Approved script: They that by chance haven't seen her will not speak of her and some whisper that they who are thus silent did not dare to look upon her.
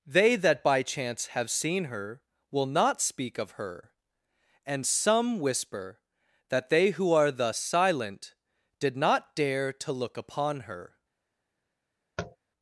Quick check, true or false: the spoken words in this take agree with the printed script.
false